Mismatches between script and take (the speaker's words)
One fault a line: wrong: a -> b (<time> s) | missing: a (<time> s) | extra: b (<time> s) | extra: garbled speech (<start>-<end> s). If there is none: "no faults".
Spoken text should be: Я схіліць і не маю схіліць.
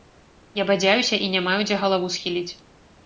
wrong: схіліць -> бадзяюся (0.7 s)
extra: дзе галаву (1.7 s)